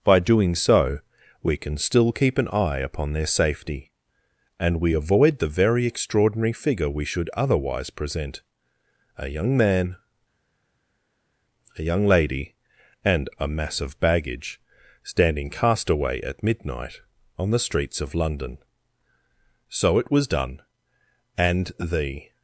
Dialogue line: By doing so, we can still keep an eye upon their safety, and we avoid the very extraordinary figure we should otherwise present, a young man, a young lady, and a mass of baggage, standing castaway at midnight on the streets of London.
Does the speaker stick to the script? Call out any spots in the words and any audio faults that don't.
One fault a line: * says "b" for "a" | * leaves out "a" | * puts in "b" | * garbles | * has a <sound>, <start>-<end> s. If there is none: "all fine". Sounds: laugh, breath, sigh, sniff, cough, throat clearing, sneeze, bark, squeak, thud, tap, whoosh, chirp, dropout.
* puts in "So it was done and the"